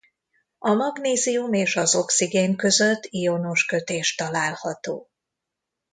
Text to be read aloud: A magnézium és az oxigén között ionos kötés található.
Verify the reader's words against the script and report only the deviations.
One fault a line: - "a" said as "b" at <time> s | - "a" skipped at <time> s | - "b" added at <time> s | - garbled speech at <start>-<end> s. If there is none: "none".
none